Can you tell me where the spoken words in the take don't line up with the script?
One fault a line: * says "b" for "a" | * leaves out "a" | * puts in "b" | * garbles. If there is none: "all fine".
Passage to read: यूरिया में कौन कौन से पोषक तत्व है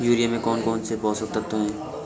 all fine